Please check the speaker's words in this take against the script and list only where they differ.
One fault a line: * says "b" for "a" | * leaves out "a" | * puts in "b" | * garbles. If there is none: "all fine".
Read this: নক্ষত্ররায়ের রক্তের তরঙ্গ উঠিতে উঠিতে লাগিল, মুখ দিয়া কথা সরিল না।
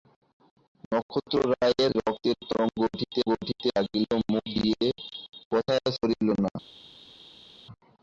all fine